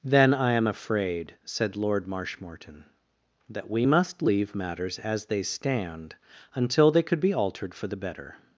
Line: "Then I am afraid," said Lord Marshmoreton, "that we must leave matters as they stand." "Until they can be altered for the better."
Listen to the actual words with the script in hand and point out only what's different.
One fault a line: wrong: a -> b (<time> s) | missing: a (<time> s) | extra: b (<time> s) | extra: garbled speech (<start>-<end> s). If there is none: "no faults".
wrong: can -> could (7.0 s)